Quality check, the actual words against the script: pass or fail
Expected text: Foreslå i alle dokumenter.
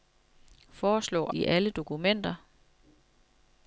pass